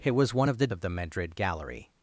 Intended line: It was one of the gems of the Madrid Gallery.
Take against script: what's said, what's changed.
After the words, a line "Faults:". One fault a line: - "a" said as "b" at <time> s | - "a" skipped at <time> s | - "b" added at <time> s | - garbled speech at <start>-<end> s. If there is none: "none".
It was one of the of the Madrid Gallery.
Faults:
- "gems" skipped at 0.7 s